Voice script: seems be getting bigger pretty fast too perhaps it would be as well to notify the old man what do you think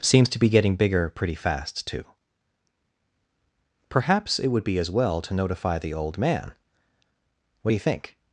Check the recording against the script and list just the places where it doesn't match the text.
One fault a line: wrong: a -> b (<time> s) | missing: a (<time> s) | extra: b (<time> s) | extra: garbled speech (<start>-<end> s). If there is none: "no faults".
extra: to (0.3 s)